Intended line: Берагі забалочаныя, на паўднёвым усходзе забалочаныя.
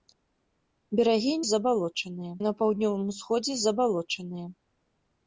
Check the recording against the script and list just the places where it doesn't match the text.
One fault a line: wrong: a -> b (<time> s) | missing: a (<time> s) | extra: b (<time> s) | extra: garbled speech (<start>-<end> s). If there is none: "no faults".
no faults